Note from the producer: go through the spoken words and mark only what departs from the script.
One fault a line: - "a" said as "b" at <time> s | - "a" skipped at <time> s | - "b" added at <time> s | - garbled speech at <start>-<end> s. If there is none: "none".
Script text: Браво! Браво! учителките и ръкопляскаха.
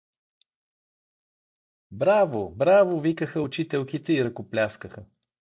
- "викаха" added at 3.0 s